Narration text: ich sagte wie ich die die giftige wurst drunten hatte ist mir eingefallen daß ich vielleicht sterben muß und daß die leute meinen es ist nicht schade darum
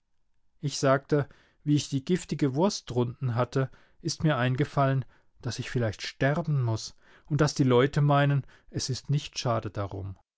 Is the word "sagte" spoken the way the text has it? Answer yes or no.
yes